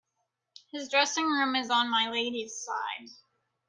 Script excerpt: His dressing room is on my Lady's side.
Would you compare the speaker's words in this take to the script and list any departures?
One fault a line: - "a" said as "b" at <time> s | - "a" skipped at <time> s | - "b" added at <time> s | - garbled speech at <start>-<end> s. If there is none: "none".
none